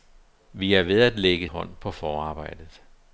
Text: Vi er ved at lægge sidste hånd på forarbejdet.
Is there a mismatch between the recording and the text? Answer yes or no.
yes